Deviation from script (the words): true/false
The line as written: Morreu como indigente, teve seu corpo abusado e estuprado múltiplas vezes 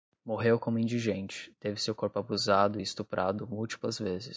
false